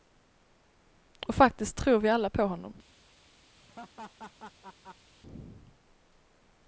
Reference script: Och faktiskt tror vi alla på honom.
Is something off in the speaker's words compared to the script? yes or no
no